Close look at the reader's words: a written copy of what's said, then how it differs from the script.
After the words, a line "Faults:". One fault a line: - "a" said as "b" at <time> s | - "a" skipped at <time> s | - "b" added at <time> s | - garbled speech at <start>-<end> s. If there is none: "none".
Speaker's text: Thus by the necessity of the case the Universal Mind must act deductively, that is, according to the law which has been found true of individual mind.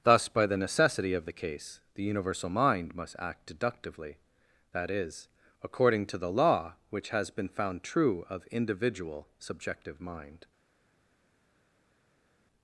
Thus by the necessity of the case the Universal Mind must act deductively, that is, according to the law which has been found true of individual subjective mind.
Faults:
- "subjective" added at 9.4 s